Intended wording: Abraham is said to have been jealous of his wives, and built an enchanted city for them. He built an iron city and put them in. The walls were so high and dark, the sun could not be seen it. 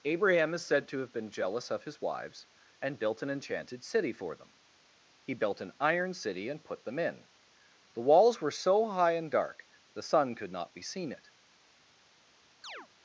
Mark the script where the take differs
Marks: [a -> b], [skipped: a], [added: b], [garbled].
Abraham is said to have been jealous of his wives, and built an enchanted city for them. He built an iron city and put them in. The walls were so high and dark, the sun could not be seen it.